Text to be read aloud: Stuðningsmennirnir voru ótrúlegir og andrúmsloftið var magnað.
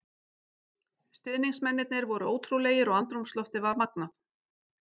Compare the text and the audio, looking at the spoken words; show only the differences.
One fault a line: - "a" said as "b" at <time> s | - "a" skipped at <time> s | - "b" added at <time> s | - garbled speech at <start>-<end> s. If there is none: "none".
none